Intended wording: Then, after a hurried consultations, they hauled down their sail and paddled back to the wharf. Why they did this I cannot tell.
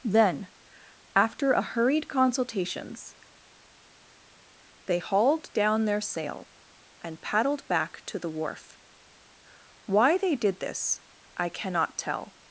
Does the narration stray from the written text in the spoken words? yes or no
no